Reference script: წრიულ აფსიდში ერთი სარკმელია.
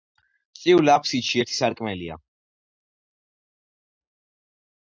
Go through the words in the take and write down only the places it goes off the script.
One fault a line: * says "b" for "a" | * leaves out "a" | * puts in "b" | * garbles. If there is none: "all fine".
all fine